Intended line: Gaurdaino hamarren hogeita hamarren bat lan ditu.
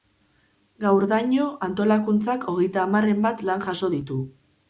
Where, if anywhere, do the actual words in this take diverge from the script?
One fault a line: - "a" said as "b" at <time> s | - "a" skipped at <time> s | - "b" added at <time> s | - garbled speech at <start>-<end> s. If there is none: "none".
- "hamarren" said as "antolakuntzak" at 1.7 s
- "jaso" added at 3.7 s